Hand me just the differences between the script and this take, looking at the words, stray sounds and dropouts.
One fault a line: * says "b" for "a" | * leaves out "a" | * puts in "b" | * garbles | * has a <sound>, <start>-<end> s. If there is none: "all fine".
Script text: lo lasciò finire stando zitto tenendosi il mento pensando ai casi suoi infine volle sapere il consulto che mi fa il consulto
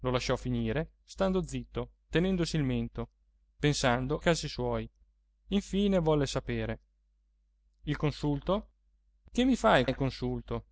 * leaves out "ai"
* puts in "il"